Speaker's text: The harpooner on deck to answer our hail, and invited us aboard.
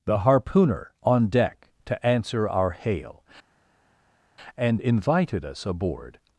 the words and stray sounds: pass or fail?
pass